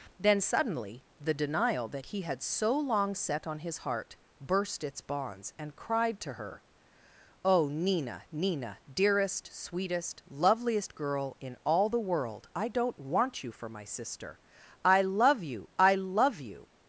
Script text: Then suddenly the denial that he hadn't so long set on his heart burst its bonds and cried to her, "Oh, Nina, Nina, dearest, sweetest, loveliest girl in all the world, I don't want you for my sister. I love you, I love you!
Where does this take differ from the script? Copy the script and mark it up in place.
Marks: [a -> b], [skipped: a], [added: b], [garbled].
Then suddenly the denial that he [hadn't -> had] so long set on his heart burst its bonds and cried to her, "Oh, Nina, Nina, dearest, sweetest, loveliest girl in all the world, I don't want you for my sister. I love you, I love you!